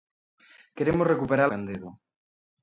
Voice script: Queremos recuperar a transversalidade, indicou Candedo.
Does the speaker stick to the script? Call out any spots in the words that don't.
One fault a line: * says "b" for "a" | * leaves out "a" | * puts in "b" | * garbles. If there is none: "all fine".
* leaves out "a transversalidade indicou"